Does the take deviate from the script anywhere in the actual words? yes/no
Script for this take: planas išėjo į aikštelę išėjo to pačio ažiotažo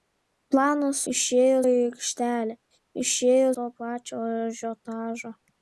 no